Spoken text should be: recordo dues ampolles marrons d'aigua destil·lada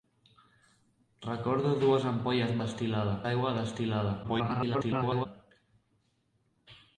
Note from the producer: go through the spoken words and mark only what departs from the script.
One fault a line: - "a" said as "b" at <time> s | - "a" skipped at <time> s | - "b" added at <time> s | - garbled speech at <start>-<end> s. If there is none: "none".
- "marrons" said as "destil·lada" at 2.6 s
- garbled speech at 4.2-5.3 s